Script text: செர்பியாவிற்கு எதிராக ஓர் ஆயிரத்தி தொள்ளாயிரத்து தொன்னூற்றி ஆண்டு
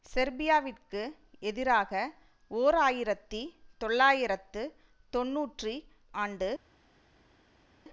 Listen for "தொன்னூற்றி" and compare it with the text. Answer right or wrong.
right